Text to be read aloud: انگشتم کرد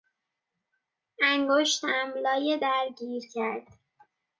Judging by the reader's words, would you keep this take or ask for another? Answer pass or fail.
fail